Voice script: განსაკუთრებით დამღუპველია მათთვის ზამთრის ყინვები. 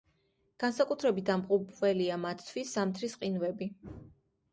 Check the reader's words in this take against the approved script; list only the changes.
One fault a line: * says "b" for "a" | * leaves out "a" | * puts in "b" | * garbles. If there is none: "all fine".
all fine